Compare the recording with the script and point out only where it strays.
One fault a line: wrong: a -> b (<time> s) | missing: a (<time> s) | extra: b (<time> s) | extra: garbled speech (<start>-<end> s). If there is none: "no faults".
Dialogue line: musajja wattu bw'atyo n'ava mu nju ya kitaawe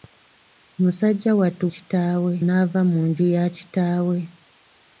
wrong: bw'atyo -> kitaawe (1.7 s)